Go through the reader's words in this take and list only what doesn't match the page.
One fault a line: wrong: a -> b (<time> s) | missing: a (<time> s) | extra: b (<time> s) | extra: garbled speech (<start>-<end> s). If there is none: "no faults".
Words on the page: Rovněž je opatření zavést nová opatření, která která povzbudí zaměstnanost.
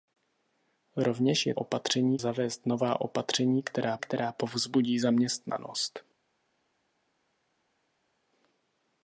no faults